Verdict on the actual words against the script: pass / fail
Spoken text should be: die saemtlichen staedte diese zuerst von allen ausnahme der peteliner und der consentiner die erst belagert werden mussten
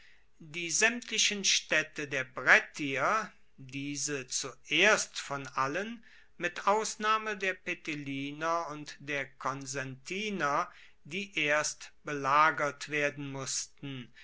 fail